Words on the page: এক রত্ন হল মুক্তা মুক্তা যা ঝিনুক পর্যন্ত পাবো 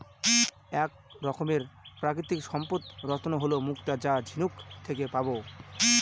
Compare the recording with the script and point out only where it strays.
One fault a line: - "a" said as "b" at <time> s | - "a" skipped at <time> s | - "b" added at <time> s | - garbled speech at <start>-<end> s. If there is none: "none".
- "রকমের প্রাকৃতিক সম্পদ" added at 1.2 s
- "মুক্তা" skipped at 3.9 s
- "পর্যন্ত" said as "থেকে" at 4.8 s